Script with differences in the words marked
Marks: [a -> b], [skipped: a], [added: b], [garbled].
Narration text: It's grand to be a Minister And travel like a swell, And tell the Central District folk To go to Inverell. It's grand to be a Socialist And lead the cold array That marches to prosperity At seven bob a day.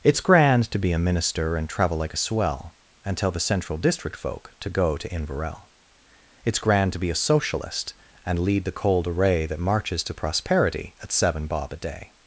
It's grand to be a Minister And travel like a swell, And tell the Central District folk To go to Inverell. It's grand to be a Socialist And lead the cold array That marches to prosperity At seven bob a day.